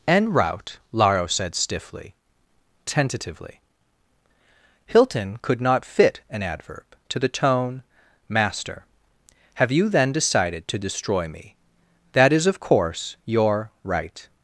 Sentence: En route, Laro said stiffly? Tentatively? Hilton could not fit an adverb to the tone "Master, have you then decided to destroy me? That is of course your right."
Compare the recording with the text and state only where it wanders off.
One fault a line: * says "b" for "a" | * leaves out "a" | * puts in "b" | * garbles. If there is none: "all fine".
all fine